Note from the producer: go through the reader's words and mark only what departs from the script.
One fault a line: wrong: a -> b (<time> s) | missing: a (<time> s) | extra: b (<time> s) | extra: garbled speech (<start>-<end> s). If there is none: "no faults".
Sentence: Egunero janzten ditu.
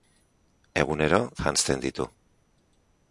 no faults